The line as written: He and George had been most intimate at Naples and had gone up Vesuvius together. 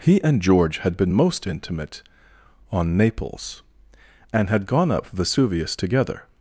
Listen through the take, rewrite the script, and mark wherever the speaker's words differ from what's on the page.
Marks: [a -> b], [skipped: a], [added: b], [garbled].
He and George had been most intimate [at -> on] Naples and had gone up Vesuvius together.